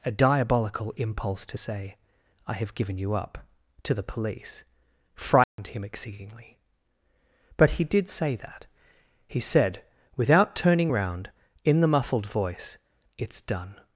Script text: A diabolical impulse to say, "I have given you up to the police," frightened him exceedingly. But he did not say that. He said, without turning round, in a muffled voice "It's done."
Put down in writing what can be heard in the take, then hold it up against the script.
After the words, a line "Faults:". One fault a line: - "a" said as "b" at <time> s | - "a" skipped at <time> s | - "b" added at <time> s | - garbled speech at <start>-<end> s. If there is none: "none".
A diabolical impulse to say, "I have given you up to the police," frightened him exceedingly. But he did say that. He said, without turning round, in the muffled voice "It's done."
Faults:
- "not" skipped at 8.1 s
- "a" said as "the" at 11.8 s